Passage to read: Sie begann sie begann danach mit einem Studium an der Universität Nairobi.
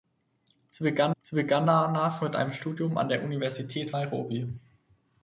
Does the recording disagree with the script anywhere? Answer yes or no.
no